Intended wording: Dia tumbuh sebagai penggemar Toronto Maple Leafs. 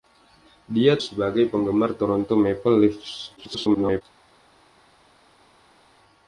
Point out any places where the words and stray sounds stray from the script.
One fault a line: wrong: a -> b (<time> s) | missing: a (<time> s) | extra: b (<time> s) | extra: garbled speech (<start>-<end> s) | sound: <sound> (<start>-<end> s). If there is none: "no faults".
missing: tumbuh (1.0 s)
extra: garbled speech (3.4-4.0 s)